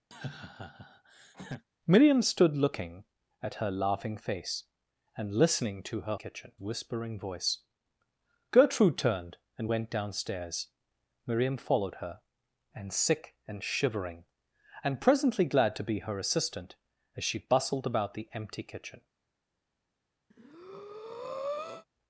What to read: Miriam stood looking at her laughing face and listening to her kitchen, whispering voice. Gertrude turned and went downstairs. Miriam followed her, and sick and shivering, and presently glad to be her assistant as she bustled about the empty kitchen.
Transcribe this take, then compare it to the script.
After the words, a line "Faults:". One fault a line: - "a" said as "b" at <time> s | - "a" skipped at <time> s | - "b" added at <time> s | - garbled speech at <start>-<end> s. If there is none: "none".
Miriam stood looking at her laughing face and listening to her kitchen, whispering voice. Gertrude turned and went downstairs. Miriam followed her, and sick and shivering, and presently glad to be her assistant as she bustled about the empty kitchen.
Faults:
none